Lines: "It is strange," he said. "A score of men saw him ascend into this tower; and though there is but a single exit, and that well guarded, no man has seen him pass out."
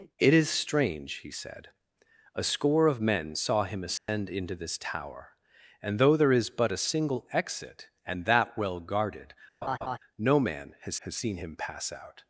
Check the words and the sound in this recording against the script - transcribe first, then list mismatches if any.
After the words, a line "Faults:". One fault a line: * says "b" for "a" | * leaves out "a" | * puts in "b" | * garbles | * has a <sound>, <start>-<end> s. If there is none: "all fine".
"It is strange," he said. "A score of men saw him ascend into this tower; and though there is but a single exit, and that well guarded, no man has has seen him pass out."
Faults:
* has a dropout, 4.0-4.1 s
* has a laugh, 9.6-10.0 s
* puts in "has"